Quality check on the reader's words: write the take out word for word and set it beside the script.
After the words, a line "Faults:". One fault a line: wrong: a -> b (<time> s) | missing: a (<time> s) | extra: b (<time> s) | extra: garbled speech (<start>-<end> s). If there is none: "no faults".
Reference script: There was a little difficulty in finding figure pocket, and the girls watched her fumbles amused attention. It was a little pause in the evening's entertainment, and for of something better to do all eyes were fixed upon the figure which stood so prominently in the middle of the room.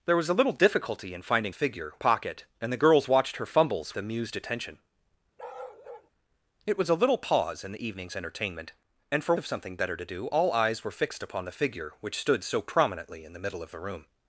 There was a little difficulty in finding figure pocket, and the girls watched her fumbles amused attention. It was a little pause in the evening's entertainment, and for of something better to do all eyes were fixed upon the figure which stood so prominently in the middle of the room.
Faults:
no faults